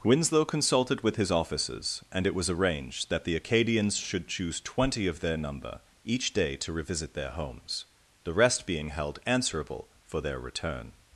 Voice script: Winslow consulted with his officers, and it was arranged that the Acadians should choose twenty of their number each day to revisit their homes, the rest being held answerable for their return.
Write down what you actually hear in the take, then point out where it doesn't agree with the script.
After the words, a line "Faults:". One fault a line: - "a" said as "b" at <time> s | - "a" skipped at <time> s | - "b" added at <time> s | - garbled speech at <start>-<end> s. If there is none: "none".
Winslow consulted with his officers, and it was arranged that the Acadians should choose twenty of their number each day to revisit their homes, the rest being held answerable for their return.
Faults:
none